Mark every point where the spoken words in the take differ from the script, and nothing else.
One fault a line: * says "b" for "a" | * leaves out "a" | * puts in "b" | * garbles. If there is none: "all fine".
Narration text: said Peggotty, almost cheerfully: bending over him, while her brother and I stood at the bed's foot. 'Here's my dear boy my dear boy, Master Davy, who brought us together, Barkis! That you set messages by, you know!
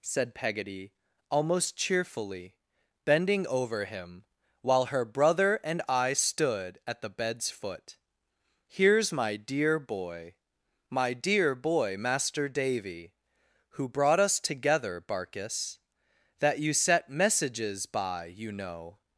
all fine